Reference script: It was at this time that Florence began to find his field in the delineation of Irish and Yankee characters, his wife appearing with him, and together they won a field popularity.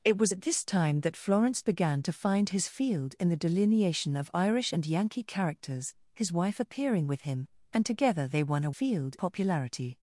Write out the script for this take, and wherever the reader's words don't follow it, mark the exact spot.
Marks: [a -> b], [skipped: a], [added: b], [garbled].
It was at this time that Florence began to find his field in the delineation of Irish and Yankee characters, his wife appearing with him, and together they won a field popularity.